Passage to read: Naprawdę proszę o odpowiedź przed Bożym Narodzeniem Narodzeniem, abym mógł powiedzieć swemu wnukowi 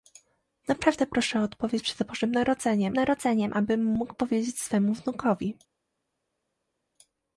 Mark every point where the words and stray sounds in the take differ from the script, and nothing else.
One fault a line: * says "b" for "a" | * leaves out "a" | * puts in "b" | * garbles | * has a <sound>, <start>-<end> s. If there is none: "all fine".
all fine